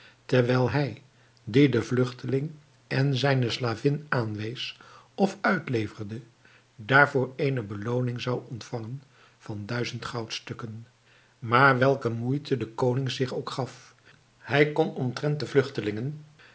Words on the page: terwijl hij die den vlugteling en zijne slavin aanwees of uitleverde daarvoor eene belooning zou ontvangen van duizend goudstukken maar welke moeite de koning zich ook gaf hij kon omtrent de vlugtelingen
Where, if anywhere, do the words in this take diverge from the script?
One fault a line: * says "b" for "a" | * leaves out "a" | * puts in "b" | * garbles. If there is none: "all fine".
all fine